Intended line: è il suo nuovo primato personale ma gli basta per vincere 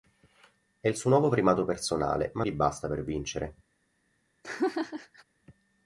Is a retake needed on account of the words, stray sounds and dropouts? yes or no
yes